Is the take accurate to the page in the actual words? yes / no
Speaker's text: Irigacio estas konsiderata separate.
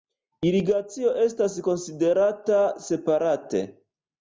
yes